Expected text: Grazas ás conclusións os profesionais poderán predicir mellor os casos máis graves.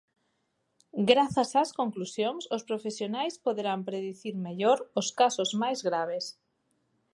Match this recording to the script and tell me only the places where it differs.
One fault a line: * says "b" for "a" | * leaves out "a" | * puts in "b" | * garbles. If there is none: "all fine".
all fine